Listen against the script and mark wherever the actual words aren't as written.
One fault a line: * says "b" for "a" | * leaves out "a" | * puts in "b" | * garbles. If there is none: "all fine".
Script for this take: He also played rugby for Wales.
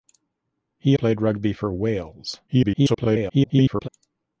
* leaves out "also"
* garbles